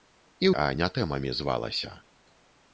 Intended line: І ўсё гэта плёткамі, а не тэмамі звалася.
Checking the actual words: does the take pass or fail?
fail